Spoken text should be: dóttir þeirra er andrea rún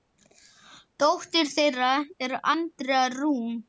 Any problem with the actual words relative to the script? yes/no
no